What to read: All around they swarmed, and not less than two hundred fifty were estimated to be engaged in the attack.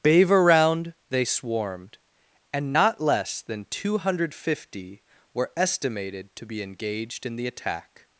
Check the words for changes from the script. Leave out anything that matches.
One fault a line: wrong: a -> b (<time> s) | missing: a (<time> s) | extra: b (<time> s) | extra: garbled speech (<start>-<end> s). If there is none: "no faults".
wrong: All -> Bave (0.0 s)